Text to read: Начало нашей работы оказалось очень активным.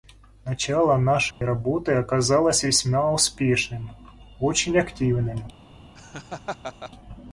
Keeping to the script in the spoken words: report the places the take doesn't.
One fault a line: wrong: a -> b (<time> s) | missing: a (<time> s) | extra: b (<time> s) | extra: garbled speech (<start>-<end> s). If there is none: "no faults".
extra: весьма успешным (2.6 s)